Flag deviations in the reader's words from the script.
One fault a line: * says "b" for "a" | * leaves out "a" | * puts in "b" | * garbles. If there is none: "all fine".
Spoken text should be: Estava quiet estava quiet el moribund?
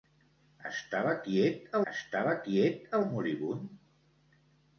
all fine